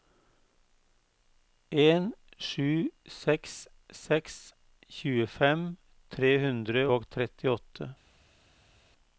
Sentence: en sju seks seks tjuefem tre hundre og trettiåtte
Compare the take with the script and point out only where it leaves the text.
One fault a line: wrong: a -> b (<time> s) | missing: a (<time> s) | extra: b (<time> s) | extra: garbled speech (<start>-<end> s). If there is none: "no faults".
no faults